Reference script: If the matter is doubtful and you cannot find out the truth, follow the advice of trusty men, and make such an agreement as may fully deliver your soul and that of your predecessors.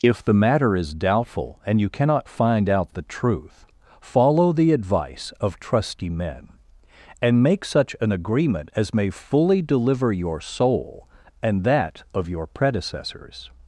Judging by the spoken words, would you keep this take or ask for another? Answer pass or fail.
pass